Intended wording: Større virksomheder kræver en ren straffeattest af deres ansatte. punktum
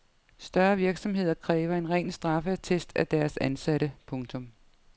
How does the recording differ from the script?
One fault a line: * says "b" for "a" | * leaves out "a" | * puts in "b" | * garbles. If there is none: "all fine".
all fine